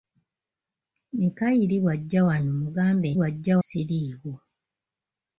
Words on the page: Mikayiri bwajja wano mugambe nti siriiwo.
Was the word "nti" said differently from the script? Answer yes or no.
yes